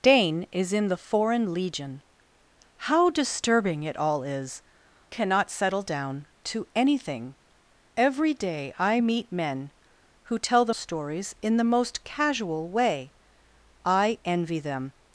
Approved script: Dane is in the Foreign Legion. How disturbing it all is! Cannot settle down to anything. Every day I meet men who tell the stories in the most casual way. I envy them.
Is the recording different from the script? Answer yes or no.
no